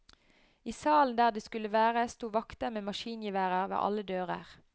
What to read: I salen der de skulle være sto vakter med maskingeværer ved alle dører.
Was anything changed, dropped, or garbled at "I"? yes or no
no